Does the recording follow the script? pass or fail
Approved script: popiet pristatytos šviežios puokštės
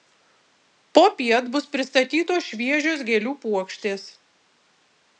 fail